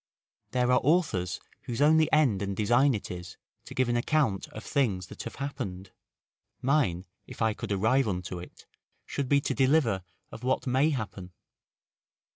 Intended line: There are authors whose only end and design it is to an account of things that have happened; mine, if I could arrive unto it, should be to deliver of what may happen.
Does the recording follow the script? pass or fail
fail